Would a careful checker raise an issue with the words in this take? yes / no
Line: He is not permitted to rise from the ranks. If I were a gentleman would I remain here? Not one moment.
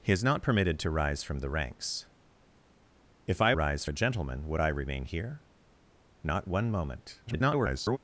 yes